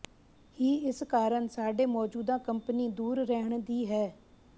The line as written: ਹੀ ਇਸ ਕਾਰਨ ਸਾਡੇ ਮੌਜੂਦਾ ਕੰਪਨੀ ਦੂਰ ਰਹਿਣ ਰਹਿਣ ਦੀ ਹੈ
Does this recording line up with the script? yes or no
no